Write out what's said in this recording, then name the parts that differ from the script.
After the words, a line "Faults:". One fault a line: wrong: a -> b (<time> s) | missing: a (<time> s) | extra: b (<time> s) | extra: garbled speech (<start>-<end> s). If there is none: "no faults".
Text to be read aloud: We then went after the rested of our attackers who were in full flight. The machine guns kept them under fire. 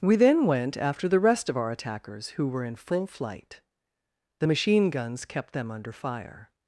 We then went after the rest of our attackers who were in full flight. The machine guns kept them under fire.
Faults:
wrong: rested -> rest (1.2 s)